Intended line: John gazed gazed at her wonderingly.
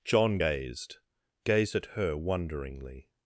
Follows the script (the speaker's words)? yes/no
yes